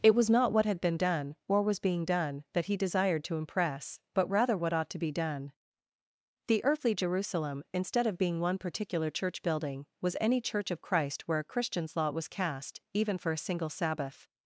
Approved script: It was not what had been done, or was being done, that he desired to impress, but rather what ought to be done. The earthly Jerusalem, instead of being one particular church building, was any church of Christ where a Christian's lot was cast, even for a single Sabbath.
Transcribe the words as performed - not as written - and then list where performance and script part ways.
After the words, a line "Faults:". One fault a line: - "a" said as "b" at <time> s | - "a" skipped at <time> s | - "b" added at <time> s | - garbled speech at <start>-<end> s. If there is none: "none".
It was not what had been done, or was being done, that he desired to impress, but rather what ought to be done. The earthly Jerusalem, instead of being one particular church building, was any church of Christ where a Christian's lot was cast, even for a single Sabbath.
Faults:
none